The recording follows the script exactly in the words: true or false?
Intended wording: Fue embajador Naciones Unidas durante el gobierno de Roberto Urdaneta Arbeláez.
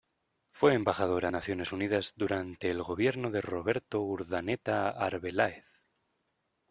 true